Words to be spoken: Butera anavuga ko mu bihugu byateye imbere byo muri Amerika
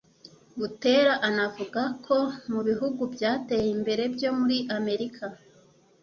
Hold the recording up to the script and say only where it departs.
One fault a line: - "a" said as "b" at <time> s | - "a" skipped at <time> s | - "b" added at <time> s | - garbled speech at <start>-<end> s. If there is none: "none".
none